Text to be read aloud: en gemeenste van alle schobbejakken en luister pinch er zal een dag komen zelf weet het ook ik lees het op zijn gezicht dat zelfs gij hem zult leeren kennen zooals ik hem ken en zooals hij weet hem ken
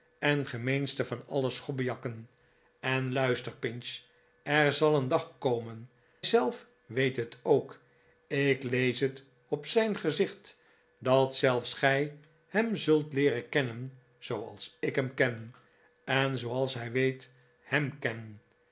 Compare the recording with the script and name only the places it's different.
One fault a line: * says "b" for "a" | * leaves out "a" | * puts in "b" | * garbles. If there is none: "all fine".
all fine